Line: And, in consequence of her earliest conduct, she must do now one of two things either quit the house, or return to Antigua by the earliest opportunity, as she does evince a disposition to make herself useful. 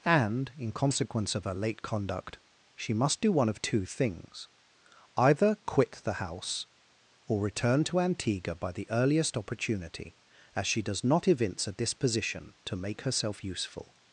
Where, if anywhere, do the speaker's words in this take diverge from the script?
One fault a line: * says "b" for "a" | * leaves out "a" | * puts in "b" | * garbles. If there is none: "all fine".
* says "late" for "earliest"
* leaves out "now"
* puts in "not"